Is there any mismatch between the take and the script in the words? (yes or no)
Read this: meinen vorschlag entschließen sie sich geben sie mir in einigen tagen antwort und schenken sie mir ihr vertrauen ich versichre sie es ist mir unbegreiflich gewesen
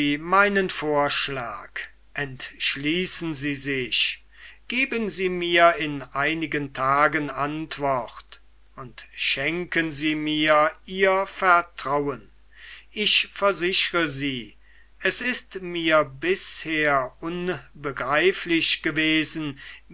yes